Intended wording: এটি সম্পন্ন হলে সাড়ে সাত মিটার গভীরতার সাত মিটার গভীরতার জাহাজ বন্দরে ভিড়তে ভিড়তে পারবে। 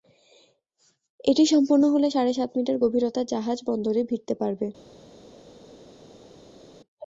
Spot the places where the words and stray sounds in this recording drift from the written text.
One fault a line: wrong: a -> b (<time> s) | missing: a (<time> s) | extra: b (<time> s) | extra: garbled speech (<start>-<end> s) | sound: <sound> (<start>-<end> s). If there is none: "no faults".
missing: সাত মিটার গভীরতার (3.3 s)
missing: ভিড়তে (4.3 s)